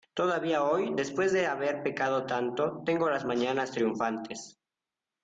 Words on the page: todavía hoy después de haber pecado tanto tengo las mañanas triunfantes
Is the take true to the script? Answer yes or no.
yes